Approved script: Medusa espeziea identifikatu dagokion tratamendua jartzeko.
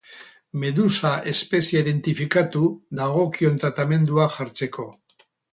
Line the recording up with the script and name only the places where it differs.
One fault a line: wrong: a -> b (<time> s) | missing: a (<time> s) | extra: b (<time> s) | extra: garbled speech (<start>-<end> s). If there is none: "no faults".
no faults